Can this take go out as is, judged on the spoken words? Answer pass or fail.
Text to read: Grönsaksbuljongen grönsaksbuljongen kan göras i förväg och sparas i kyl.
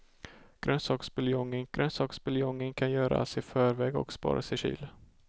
pass